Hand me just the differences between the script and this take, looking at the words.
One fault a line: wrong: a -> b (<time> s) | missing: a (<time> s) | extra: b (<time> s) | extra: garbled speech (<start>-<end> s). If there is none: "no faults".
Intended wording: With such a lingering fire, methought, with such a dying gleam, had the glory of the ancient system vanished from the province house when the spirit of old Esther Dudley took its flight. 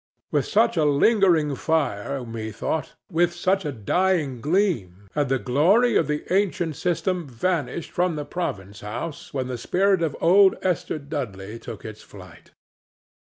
no faults